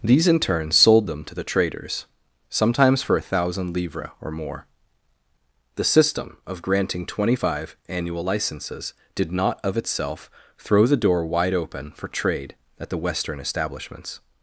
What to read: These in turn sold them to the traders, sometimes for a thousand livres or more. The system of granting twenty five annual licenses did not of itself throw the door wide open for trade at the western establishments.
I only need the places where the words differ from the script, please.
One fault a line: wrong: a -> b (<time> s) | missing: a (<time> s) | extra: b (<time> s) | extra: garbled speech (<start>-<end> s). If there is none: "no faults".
no faults